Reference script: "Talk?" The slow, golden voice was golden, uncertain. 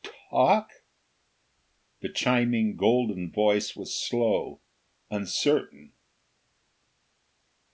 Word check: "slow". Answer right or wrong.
wrong